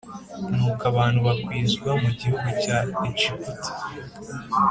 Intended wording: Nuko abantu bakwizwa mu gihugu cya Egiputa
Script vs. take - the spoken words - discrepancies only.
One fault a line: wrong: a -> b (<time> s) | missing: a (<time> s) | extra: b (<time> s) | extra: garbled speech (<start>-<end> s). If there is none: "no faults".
no faults